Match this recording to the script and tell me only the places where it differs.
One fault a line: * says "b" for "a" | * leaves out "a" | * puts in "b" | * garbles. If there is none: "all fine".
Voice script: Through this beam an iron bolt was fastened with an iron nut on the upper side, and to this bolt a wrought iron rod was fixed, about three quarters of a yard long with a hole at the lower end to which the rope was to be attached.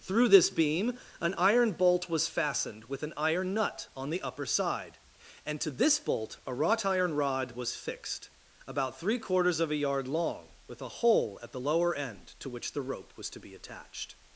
all fine